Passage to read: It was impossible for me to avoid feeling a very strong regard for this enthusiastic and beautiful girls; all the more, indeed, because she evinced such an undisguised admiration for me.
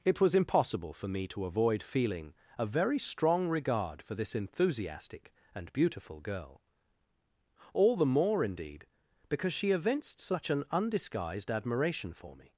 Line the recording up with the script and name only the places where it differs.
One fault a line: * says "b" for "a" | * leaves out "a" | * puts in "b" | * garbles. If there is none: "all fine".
* says "girl" for "girls"